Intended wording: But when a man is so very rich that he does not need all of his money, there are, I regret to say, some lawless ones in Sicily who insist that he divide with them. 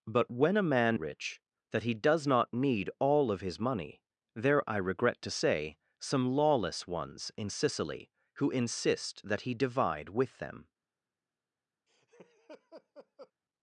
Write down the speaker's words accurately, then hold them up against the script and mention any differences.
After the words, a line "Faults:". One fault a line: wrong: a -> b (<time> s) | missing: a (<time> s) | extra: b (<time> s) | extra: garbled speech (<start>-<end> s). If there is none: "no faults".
But when a man rich that he does not need all of his money, there I regret to say, some lawless ones in Sicily who insist that he divide with them.
Faults:
missing: is so very (1.0 s)
missing: are (4.7 s)